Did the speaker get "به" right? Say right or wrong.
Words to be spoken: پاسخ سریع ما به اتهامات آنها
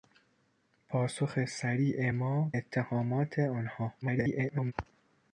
wrong